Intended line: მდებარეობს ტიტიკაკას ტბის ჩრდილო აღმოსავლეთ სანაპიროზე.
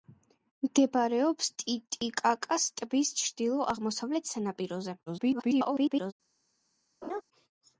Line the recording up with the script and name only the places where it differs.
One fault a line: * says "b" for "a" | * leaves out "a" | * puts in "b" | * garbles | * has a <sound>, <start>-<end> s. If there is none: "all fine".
* garbles
* has a laugh, 7.0-7.2 s